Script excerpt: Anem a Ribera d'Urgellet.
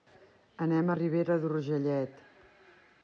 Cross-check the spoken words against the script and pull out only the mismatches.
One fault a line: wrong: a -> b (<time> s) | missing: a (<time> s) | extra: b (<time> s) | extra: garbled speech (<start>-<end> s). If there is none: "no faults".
no faults